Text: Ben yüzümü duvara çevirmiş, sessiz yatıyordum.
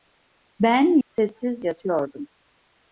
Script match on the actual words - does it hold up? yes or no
no